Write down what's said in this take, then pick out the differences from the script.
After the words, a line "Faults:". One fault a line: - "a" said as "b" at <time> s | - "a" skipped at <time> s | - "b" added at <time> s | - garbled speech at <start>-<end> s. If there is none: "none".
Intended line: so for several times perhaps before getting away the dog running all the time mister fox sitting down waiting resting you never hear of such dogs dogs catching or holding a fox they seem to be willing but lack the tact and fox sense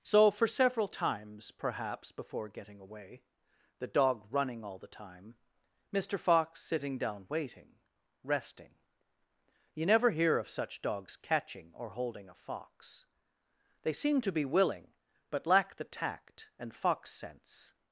so for several times perhaps before getting away the dog running all the time mister fox sitting down waiting resting you never hear of such dogs catching or holding a fox they seem to be willing but lack the tact and fox sense
Faults:
- "dogs" skipped at 11.2 s